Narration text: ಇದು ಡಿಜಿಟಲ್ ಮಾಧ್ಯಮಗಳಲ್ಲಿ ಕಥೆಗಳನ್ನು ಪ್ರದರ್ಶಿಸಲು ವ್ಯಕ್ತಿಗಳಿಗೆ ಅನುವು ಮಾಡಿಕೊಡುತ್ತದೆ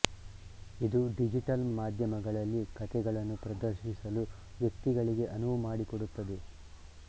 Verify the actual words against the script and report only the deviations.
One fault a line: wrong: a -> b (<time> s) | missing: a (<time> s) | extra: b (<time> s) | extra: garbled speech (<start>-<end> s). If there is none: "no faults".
no faults